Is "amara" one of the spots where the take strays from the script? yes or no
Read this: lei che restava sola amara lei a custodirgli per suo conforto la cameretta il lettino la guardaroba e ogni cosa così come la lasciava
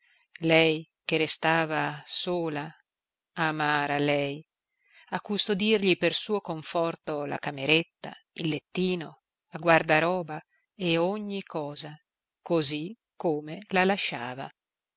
no